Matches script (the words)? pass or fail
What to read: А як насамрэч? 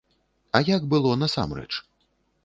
fail